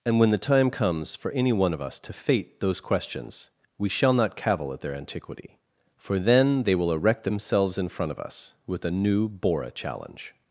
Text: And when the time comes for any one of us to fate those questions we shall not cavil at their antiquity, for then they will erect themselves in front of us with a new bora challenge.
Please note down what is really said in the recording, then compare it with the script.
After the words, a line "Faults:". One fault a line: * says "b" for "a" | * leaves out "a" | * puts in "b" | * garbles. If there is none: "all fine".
And when the time comes for any one of us to fate those questions we shall not cavil at their antiquity, for then they will erect themselves in front of us with a new bora challenge.
Faults:
all fine